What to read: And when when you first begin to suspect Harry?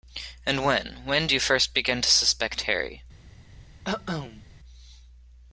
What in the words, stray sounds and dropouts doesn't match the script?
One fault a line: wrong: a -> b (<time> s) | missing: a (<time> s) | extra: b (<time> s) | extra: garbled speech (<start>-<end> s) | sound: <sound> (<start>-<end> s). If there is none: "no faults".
sound: cough (3.8-4.4 s)